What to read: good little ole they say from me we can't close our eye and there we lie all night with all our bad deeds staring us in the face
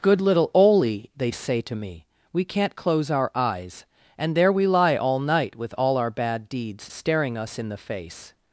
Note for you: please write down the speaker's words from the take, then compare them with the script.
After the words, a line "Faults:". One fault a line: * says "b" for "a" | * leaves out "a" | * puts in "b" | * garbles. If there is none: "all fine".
good little ole they say to me we can't close our eyes and there we lie all night with all our bad deeds staring us in the face
Faults:
* says "to" for "from"
* says "eyes" for "eye"